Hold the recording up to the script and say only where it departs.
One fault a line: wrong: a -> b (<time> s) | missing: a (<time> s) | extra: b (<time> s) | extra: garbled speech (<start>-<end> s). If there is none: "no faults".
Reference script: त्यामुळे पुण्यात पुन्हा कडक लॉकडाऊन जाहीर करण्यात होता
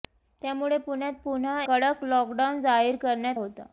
no faults